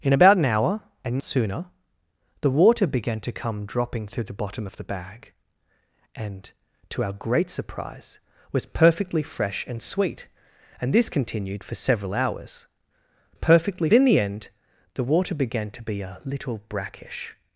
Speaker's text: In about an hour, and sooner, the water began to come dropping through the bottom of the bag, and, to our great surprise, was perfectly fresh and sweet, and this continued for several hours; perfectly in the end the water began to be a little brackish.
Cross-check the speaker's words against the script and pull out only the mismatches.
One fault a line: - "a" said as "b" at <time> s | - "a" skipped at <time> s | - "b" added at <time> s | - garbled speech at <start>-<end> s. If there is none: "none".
none